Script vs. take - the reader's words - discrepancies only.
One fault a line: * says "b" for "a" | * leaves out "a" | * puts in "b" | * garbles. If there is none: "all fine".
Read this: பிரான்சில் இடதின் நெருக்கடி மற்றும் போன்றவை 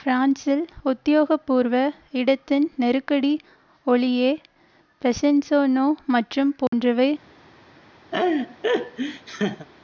* puts in "உத்தியோகபூர்வ"
* puts in "ஒலியே பெசன்ஸநோ"